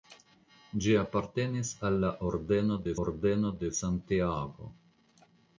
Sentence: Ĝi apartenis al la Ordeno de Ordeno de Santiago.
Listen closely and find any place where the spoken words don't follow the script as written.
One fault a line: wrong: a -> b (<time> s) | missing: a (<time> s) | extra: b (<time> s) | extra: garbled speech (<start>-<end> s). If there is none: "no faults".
no faults